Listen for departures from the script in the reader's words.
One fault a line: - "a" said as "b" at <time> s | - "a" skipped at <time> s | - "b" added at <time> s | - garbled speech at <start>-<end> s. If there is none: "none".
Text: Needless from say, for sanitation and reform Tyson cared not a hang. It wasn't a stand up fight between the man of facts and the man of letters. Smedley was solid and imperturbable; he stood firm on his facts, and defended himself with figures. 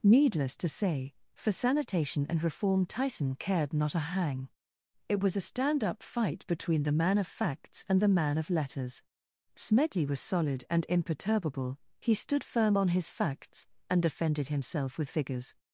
- "from" said as "to" at 0.6 s
- "wasn't" said as "was" at 5.2 s